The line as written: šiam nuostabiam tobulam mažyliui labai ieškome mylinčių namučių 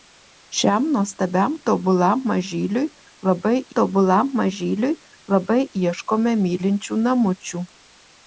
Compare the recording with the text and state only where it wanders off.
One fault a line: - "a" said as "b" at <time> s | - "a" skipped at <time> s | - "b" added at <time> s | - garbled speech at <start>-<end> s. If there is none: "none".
- "tobulam mažyliui labai" added at 3.8 s